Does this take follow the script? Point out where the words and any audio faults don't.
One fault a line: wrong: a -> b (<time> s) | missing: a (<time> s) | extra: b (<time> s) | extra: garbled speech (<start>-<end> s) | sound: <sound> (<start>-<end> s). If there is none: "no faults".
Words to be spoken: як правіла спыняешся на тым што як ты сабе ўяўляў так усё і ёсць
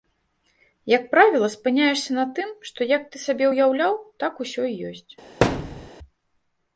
sound: thud (5.4-5.9 s)